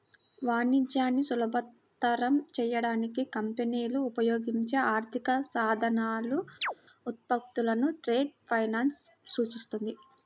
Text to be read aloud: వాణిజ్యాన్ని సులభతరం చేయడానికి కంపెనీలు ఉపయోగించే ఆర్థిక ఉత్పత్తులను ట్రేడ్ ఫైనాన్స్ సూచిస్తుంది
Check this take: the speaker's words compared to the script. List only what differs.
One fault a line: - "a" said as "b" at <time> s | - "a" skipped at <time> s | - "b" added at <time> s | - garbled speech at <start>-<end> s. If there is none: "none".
- "సాధనాలు" added at 5.5 s